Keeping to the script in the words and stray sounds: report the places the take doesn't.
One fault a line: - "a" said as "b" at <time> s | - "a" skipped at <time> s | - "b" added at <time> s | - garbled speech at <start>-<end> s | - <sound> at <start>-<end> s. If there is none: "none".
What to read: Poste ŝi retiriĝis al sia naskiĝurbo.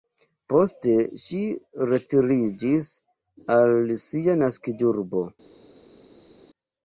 none